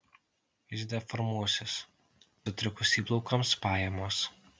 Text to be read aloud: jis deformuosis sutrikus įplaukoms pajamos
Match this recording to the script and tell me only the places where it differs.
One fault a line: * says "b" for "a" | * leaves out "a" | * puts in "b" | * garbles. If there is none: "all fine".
all fine